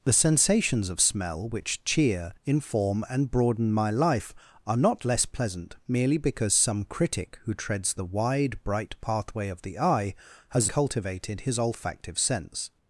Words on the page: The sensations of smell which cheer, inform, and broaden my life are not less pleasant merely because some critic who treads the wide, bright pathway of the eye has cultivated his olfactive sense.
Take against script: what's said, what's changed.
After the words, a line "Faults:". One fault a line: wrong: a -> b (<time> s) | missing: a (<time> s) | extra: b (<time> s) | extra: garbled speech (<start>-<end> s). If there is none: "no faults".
The sensations of smell which cheer, inform, and broaden my life are not less pleasant merely because some critic who treads the wide, bright pathway of the eye has cultivated his olfactive sense.
Faults:
no faults